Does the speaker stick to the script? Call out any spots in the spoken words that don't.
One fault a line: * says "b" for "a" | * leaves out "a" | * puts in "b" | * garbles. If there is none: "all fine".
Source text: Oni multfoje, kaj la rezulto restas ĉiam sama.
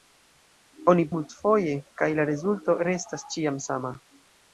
all fine